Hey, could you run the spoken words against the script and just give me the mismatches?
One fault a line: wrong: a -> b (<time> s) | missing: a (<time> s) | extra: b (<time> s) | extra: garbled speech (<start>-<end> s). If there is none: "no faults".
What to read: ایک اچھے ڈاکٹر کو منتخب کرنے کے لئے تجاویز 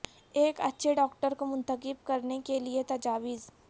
no faults